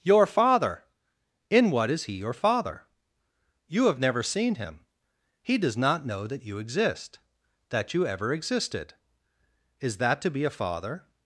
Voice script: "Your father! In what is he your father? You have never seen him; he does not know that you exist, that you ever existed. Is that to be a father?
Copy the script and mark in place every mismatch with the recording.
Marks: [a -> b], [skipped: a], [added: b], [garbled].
"Your father! In what is he your father? You have never seen him; he does not know that you exist, that you ever existed. Is that to be a father?